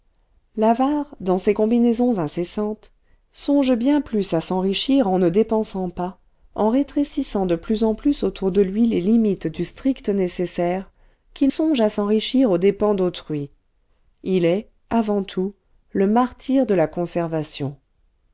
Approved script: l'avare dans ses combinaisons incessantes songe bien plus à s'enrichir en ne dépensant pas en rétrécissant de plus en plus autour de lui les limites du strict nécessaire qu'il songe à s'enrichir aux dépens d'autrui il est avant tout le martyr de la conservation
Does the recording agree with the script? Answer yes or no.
yes